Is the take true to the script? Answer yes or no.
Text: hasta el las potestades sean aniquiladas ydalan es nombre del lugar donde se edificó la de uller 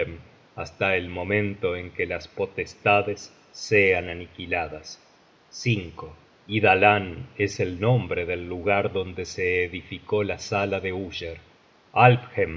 no